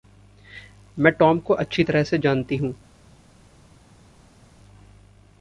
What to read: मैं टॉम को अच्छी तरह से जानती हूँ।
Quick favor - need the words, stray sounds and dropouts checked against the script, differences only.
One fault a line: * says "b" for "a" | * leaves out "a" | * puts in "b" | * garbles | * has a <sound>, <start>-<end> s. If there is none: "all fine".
all fine